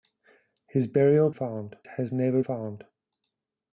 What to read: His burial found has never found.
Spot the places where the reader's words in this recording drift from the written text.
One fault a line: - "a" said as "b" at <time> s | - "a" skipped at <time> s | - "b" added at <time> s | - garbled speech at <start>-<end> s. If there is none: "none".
none